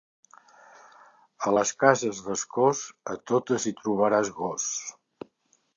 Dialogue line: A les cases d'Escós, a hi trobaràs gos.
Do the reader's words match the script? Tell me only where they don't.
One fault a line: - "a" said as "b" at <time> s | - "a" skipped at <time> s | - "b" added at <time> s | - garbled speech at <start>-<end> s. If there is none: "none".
- "totes" added at 3.3 s